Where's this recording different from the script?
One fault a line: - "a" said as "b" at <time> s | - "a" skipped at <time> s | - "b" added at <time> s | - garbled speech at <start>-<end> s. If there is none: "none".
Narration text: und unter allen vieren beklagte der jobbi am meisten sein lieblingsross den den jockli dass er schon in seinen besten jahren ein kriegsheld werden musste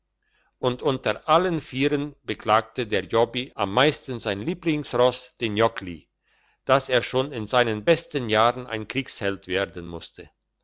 - "den" skipped at 5.5 s